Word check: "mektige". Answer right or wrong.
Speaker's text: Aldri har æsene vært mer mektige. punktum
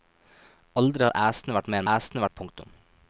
wrong